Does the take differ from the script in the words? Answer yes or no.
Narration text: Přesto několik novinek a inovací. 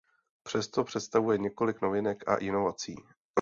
yes